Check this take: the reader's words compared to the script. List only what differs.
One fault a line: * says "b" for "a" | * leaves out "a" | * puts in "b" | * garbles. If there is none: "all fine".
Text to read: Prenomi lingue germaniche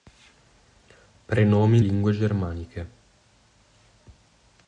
all fine